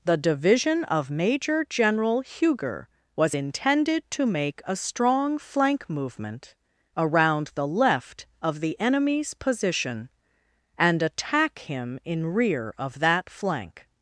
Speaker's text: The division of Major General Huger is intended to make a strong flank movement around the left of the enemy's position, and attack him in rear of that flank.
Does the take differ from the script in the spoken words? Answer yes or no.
yes